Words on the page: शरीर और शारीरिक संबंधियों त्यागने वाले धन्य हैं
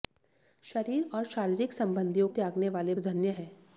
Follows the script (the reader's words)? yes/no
yes